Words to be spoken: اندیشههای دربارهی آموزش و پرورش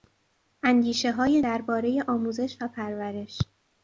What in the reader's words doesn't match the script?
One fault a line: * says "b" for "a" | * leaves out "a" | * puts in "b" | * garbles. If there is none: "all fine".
all fine